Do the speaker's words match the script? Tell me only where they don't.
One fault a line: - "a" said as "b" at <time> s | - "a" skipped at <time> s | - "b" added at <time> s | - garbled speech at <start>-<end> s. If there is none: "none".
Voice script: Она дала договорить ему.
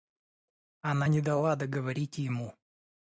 - "не" added at 1.1 s